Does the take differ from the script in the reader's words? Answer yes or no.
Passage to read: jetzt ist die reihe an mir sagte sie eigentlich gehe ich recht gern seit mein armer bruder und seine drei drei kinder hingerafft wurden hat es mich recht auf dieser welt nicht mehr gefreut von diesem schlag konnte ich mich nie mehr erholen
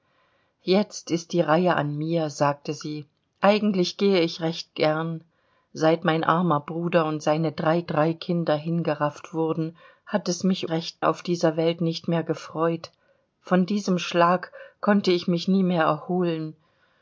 no